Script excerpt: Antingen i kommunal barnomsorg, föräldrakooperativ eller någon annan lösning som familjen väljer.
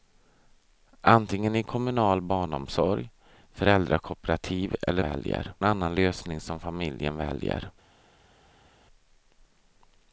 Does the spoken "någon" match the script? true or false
false